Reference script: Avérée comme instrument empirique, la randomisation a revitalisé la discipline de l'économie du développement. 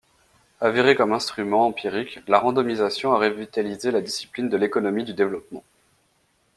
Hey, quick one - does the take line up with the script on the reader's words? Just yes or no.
yes